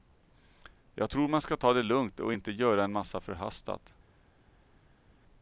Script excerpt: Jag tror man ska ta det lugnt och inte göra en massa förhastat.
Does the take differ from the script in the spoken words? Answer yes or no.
no